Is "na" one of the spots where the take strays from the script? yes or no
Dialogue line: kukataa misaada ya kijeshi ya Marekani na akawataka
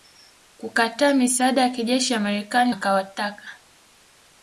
yes